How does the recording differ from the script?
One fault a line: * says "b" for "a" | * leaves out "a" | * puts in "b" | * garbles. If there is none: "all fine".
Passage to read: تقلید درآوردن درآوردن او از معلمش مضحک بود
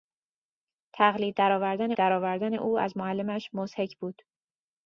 all fine